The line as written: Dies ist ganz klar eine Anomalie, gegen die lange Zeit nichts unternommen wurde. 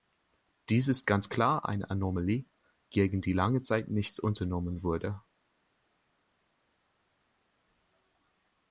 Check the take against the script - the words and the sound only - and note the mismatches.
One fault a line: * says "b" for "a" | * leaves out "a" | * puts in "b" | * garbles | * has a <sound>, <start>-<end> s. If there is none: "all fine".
all fine